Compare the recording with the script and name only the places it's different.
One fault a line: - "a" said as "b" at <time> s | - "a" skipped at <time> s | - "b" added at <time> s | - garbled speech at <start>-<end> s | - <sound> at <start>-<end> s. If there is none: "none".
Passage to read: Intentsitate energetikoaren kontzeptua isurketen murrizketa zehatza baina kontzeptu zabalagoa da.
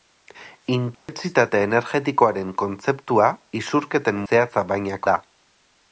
- dropout at 0.9-1.1 s
- "murrizketa" skipped at 4.2 s
- "kontzeptu zabalagoa" skipped at 5.0 s